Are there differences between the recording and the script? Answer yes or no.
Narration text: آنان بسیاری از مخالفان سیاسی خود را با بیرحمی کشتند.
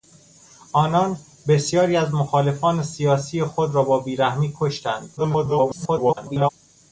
yes